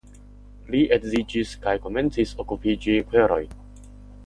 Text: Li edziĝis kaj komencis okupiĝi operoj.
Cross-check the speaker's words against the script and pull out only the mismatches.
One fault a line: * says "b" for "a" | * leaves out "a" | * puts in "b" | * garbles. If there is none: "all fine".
all fine